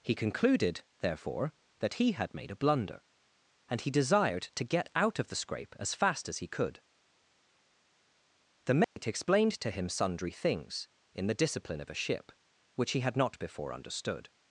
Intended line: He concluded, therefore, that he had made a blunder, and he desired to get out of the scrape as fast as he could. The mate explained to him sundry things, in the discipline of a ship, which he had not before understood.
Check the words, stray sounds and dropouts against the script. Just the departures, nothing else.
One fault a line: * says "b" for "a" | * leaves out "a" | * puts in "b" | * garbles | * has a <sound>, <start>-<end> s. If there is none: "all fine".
* has a dropout, 8.8-9.0 s